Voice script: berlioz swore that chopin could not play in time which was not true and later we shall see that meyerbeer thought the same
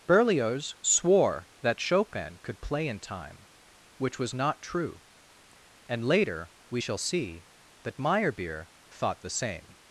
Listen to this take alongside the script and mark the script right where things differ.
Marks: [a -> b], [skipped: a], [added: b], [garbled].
berlioz swore that chopin could [skipped: not] play in time which was not true and later we shall see that meyerbeer thought the same